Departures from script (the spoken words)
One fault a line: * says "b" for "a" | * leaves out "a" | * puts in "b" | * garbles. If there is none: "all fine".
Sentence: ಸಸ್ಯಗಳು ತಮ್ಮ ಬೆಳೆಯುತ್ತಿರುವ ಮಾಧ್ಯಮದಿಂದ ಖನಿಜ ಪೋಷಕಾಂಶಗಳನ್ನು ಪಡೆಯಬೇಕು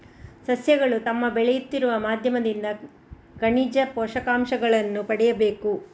all fine